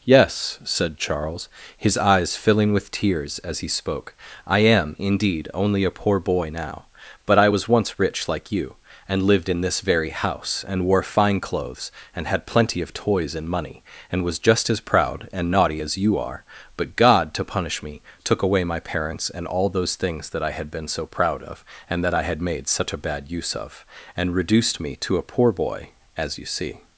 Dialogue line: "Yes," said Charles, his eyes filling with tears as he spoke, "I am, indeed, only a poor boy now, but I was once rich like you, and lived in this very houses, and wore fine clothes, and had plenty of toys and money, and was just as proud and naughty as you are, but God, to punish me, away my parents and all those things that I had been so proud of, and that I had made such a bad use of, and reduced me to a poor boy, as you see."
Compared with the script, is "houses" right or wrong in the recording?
wrong